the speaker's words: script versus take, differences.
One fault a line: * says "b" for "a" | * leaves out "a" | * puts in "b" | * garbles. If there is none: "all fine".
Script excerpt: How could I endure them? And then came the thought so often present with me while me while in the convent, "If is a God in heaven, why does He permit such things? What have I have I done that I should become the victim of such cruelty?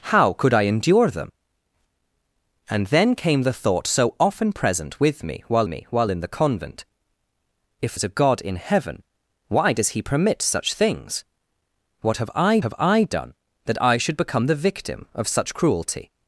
all fine